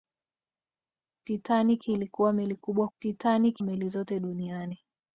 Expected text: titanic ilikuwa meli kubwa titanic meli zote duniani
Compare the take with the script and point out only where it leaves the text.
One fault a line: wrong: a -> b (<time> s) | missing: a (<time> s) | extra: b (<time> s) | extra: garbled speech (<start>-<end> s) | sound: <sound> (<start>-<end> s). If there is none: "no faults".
no faults